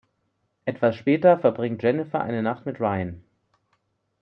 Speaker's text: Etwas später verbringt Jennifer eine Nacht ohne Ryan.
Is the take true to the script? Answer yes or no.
no